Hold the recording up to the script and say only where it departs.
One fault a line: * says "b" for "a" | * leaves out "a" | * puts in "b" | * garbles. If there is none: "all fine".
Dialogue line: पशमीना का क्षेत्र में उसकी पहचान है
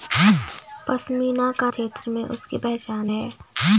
all fine